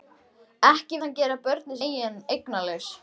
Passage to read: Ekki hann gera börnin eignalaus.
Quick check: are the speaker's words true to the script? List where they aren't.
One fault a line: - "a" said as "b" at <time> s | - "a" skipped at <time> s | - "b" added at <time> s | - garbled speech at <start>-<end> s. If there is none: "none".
none